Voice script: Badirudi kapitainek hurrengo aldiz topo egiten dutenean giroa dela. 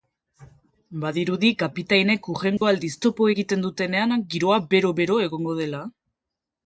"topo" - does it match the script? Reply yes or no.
yes